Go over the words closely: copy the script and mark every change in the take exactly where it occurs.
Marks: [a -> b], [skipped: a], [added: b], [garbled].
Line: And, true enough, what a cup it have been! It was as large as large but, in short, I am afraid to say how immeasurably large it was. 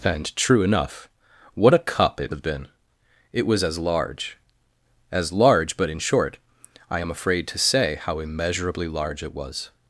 And, true enough, what a cup it have been! It was as large as large but, in short, I am afraid to say how immeasurably large it was.